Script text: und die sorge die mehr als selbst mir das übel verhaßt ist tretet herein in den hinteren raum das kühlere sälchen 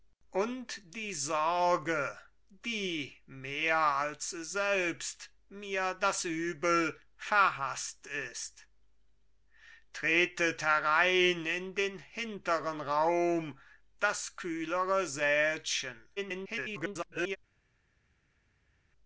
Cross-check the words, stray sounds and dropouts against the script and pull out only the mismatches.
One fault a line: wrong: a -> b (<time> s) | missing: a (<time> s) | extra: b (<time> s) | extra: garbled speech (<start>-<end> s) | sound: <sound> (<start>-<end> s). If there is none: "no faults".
extra: garbled speech (16.2-17.4 s)